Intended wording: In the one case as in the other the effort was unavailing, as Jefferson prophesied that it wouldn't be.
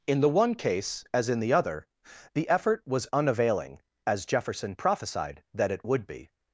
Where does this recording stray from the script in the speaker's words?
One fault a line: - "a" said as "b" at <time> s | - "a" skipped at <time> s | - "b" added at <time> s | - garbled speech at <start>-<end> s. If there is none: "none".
- "wouldn't" said as "would" at 5.8 s